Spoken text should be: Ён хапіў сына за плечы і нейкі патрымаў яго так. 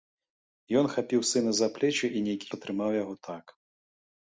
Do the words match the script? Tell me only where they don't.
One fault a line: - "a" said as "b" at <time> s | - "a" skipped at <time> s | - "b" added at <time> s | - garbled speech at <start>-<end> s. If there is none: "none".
none